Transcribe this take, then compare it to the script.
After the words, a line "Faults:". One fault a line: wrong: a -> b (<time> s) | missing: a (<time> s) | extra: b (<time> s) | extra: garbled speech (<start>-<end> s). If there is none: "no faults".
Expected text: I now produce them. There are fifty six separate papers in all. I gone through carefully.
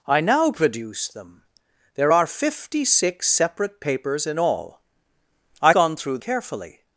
I now produce them. There are fifty six separate papers in all. I gone through carefully.
Faults:
no faults